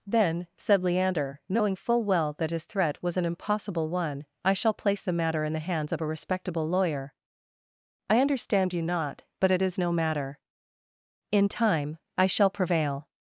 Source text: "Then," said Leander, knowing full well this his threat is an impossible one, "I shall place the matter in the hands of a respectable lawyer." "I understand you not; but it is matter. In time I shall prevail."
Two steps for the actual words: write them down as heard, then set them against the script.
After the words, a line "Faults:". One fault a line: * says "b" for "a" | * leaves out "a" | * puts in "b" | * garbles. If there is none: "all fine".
"Then," said Leander, knowing full well that his threat was an impossible one, "I shall place the matter in the hands of a respectable lawyer." "I understand you not; but it is no matter. In time I shall prevail."
Faults:
* says "that" for "this"
* says "was" for "is"
* puts in "no"